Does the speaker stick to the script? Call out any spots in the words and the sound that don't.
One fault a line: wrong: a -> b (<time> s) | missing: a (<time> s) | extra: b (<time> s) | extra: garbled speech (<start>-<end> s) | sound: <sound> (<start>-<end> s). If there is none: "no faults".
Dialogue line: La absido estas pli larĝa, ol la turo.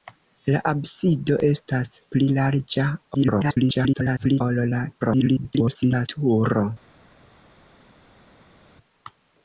extra: garbled speech (3.1-4.4 s)
extra: garbled speech (5.0-6.1 s)